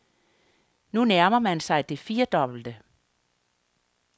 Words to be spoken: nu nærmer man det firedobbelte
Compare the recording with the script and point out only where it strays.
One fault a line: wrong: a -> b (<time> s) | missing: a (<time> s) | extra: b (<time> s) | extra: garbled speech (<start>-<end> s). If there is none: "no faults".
extra: sig (1.6 s)